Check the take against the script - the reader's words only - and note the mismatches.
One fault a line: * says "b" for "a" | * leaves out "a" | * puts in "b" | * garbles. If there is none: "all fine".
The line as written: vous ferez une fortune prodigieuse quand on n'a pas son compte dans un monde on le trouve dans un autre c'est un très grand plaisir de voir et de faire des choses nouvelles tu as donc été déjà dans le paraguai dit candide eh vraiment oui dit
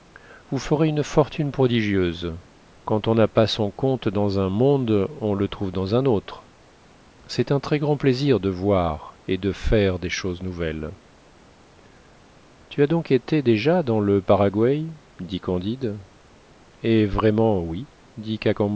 all fine